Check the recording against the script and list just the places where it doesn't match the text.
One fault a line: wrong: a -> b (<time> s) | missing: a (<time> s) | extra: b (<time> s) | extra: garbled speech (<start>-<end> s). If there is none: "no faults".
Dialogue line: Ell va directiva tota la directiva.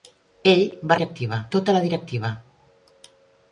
no faults